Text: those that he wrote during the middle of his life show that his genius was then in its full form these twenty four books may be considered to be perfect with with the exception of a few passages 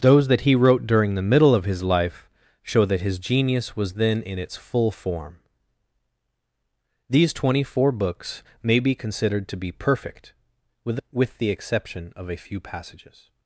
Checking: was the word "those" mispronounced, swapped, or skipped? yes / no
no